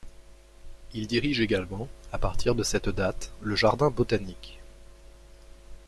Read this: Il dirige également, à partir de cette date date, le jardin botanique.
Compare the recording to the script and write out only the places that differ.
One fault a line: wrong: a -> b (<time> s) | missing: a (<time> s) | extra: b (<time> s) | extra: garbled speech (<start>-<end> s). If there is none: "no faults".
missing: date (3.3 s)